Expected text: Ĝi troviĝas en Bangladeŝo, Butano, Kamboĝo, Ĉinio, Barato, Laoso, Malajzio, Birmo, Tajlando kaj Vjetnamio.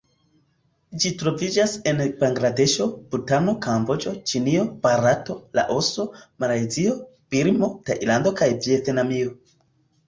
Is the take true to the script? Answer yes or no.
yes